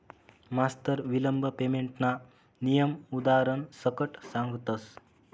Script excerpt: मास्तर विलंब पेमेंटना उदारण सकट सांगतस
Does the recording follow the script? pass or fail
fail